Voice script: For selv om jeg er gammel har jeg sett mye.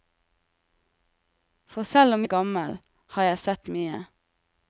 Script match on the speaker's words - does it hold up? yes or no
no